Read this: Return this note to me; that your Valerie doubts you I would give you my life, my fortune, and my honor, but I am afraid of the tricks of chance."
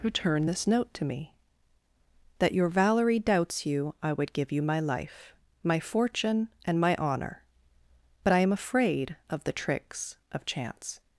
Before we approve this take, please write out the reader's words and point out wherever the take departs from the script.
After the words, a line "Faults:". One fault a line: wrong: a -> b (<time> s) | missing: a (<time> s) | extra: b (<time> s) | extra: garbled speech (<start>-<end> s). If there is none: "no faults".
Return this note to me; that your Valerie doubts you I would give you my life, my fortune, and my honor, but I am afraid of the tricks of chance."
Faults:
no faults